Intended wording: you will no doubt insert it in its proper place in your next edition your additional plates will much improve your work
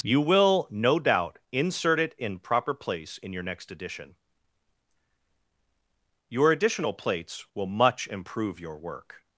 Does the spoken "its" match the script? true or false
false